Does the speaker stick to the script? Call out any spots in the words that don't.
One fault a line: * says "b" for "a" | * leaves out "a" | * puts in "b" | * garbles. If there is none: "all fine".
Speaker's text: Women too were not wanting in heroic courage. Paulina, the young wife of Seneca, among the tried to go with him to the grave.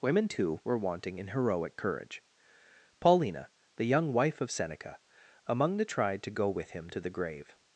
* leaves out "not"